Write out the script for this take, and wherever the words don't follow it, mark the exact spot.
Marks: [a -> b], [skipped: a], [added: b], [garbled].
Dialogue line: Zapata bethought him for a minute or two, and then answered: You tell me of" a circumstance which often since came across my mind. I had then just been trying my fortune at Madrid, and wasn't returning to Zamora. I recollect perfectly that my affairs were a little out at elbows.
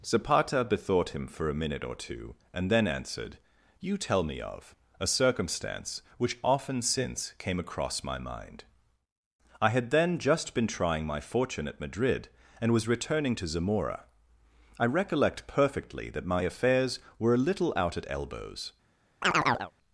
Zapata bethought him for a minute or two, and then answered: You tell me of" a circumstance which often since came across my mind. I had then just been trying my fortune at Madrid, and [wasn't -> was] returning to Zamora. I recollect perfectly that my affairs were a little out at elbows.